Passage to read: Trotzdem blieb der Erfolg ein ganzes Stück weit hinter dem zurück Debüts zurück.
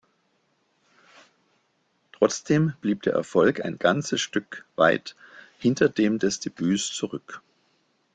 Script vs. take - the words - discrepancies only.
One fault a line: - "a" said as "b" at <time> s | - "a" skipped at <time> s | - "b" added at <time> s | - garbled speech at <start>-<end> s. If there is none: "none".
- "zurück" said as "des" at 6.2 s